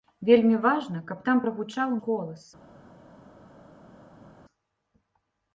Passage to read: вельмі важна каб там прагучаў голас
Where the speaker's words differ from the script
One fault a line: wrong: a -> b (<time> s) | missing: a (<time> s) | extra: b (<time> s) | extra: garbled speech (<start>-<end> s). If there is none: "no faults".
no faults